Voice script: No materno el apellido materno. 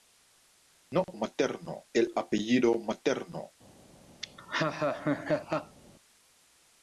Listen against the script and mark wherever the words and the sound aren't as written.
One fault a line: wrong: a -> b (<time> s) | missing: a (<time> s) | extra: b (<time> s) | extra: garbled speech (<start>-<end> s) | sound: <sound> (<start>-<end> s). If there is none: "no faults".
sound: laugh (4.2-5.8 s)